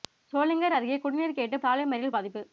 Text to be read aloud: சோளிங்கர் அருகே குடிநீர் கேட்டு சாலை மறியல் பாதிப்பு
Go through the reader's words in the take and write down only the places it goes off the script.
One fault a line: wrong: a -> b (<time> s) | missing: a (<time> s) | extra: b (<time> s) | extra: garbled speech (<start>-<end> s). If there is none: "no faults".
no faults